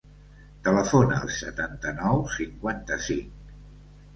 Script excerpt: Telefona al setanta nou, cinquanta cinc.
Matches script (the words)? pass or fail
pass